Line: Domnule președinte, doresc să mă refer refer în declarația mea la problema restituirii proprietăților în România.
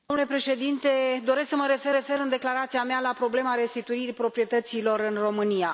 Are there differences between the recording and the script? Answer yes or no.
no